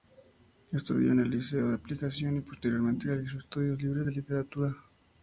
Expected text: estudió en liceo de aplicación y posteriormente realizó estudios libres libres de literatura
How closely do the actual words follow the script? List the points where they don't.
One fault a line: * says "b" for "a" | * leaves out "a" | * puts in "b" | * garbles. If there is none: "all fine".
* puts in "el"
* leaves out "libres"